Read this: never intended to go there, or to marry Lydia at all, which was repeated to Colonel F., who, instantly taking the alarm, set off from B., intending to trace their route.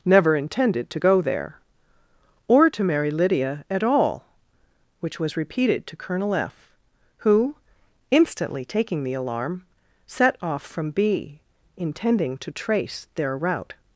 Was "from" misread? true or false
false